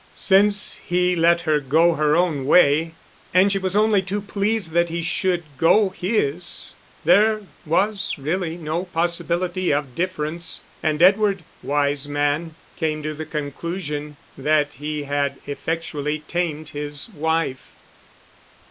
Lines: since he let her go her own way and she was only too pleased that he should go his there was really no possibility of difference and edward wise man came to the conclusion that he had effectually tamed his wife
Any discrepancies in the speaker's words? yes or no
no